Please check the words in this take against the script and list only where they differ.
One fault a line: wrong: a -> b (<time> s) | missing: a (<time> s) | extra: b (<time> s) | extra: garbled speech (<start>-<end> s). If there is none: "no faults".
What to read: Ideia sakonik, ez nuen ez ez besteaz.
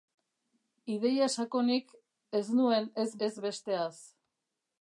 no faults